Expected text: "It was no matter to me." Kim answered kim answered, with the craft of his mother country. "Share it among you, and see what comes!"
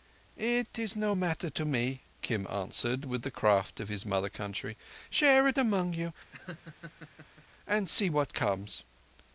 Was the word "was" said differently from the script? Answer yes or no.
yes